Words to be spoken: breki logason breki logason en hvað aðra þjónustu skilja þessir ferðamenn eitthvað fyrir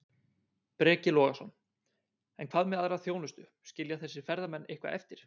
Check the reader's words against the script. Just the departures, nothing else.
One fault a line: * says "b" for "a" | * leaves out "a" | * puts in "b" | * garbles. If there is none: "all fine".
* leaves out "breki logason"
* puts in "með"
* says "eftir" for "fyrir"